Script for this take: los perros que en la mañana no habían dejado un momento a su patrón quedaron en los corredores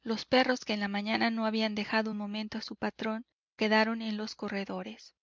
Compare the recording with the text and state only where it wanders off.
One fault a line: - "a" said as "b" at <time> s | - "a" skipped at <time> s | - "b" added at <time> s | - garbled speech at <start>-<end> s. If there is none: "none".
none